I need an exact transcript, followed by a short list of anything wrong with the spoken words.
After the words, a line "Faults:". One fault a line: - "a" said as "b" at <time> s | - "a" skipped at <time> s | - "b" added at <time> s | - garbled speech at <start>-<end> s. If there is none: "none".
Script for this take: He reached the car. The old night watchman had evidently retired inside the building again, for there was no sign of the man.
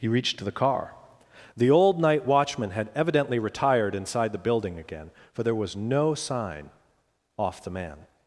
He reached the car. The old night watchman had evidently retired inside the building again, for there was no sign off the man.
Faults:
- "of" said as "off" at 7.4 s